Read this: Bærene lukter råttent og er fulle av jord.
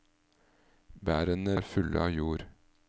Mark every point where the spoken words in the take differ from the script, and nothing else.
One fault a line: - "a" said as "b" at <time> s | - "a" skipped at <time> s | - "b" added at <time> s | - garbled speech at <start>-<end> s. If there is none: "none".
- "lukter råttent og" skipped at 1.6 s